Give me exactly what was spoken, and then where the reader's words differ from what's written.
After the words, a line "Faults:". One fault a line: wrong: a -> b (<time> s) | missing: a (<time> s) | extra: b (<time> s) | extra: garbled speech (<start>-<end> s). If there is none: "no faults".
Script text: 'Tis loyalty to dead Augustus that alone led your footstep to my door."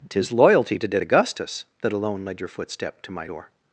'Tis loyalty to dead Augustus that alone led your footstep to my door."
Faults:
no faults